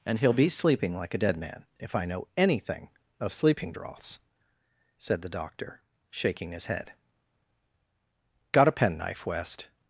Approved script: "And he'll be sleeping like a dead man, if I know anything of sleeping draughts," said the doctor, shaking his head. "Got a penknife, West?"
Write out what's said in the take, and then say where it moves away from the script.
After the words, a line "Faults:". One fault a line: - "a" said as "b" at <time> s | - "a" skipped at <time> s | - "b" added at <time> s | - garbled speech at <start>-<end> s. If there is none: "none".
"And he'll be sleeping like a dead man, if I know anything of sleeping draughts," said the doctor, shaking his head. "Got a penknife, West?"
Faults:
none